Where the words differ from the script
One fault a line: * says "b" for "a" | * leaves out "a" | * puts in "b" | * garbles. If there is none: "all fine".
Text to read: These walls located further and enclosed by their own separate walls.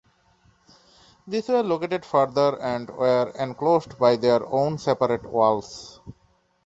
* says "were" for "walls"
* puts in "were"